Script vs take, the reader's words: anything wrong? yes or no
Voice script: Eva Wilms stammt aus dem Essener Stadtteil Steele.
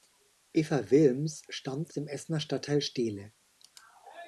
yes